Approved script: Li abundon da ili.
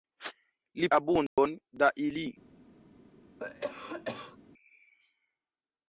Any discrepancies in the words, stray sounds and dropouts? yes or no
yes